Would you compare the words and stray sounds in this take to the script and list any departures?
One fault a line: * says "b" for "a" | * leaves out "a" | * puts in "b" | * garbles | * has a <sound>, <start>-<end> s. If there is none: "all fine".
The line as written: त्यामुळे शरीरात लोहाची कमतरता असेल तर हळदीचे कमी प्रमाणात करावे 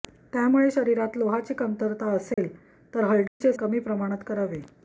* has a dropout, 2.3-2.4 s
* has a dropout, 3.3-3.4 s